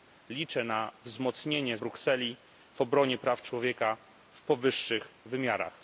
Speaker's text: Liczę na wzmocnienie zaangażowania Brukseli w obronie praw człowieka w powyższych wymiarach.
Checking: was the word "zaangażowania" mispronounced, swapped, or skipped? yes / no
yes